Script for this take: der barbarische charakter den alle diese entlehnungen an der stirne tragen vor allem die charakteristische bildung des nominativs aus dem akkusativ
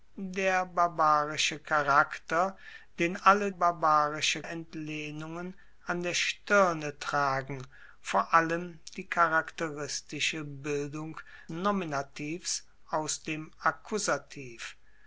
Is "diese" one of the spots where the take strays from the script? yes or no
yes